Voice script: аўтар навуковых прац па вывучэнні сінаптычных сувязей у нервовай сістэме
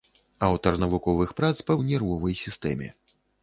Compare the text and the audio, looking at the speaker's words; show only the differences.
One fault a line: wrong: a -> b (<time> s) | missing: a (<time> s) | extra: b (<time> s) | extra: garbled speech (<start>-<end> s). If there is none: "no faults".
missing: вывучэнні сінаптычных сувязей (1.8 s)